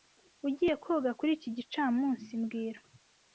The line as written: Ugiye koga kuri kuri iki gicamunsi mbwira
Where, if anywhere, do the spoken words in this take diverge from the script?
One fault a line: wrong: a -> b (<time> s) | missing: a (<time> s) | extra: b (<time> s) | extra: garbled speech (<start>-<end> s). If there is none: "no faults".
missing: kuri (1.3 s)